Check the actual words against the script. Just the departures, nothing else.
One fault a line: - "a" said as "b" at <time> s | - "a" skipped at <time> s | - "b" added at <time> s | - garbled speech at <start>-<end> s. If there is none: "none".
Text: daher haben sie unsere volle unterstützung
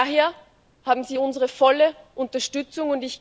none